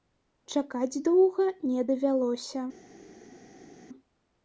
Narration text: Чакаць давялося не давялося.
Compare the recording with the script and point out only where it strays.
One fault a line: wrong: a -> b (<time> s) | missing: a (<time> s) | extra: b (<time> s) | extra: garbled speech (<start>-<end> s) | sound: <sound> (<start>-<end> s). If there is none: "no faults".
wrong: давялося -> доўга (1.1 s)